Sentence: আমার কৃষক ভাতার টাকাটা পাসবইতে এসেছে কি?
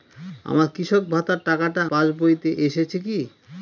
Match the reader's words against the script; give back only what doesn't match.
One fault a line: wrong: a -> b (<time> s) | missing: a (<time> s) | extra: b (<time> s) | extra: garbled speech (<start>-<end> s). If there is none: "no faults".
no faults